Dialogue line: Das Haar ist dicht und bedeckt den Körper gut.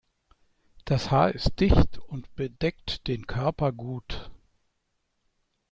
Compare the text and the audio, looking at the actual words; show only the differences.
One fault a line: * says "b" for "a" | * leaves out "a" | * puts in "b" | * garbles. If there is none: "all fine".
all fine